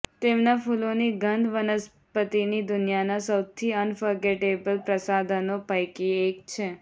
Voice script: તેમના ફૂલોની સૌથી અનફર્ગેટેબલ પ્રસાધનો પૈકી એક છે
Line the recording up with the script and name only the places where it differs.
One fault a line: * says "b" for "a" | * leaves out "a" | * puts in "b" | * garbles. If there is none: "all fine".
* puts in "ગંધ વનસ્પતિની દુનિયાના"